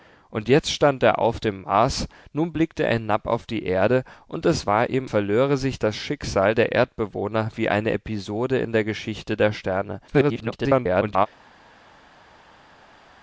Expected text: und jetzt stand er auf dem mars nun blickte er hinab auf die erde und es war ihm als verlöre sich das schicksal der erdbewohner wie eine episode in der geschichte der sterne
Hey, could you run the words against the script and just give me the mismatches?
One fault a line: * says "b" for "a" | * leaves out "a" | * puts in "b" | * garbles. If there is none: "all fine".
* leaves out "als"
* garbles